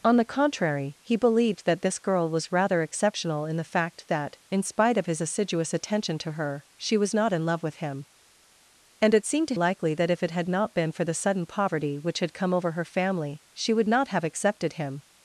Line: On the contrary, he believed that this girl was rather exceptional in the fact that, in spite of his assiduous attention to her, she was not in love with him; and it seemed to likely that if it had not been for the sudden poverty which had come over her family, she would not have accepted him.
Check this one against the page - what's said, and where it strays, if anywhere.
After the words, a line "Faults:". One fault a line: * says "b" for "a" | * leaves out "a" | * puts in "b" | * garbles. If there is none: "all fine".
On the contrary, he believed that this girl was rather exceptional in the fact that, in spite of his assiduous attention to her, she was not in love with him; and it seemed to likely that if it had not been for the sudden poverty which had come over her family, she would not have accepted him.
Faults:
all fine